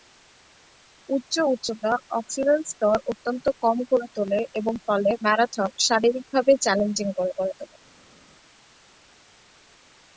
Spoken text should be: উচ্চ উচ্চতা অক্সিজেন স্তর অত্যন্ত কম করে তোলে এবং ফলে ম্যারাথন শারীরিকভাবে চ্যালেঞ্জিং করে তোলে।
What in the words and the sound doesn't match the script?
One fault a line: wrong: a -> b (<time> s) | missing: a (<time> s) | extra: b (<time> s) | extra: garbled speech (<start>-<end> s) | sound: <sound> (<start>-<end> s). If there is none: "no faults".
extra: করে (7.4 s)